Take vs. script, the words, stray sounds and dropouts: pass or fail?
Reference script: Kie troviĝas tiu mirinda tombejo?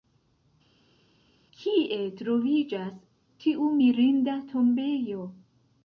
pass